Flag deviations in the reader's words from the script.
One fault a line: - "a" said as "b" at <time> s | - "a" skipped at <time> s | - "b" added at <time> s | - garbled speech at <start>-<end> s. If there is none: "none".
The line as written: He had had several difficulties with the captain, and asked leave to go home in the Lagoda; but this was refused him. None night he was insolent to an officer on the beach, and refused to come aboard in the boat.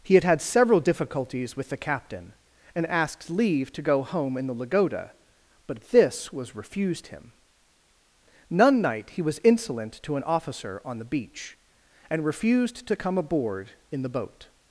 none